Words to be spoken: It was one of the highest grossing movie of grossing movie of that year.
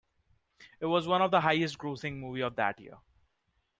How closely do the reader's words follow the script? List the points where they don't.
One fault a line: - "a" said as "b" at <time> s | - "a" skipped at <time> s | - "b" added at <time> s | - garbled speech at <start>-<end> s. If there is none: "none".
- "grossing movie of" skipped at 2.6 s